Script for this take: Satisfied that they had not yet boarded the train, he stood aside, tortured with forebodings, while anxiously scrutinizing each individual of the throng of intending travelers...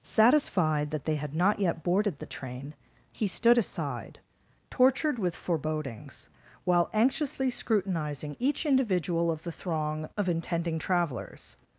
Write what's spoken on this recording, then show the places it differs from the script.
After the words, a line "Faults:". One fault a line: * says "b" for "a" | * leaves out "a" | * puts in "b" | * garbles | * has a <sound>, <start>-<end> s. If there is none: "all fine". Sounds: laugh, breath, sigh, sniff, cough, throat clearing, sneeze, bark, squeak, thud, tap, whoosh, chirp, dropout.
Satisfied that they had not yet boarded the train, he stood aside, tortured with forebodings, while anxiously scrutinizing each individual of the throng of intending travelers...
Faults:
all fine